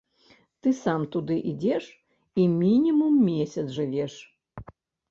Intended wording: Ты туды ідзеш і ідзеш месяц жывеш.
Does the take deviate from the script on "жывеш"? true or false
false